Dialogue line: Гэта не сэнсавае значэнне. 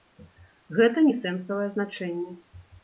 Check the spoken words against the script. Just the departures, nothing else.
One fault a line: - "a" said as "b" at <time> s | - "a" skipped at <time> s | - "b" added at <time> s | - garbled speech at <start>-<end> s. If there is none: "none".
none